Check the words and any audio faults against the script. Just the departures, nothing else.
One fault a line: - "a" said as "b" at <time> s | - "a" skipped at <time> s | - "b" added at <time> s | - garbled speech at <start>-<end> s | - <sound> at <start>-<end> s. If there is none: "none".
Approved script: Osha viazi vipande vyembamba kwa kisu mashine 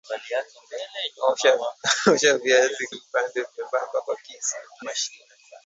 none